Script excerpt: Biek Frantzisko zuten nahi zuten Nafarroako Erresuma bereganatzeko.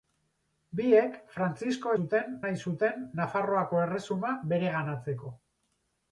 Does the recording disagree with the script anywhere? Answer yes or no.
no